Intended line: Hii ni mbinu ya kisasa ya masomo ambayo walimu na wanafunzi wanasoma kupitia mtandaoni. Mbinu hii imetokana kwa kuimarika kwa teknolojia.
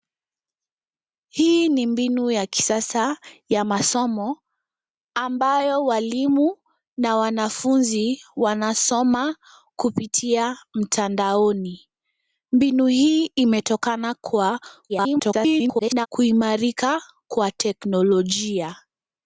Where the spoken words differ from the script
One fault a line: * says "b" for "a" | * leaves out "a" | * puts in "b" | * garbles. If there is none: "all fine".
* garbles